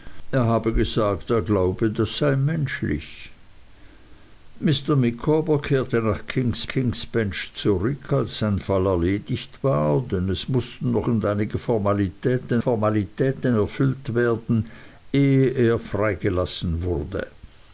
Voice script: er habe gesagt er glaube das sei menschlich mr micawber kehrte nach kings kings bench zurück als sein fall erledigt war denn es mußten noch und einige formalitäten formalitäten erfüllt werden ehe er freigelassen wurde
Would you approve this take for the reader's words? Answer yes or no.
yes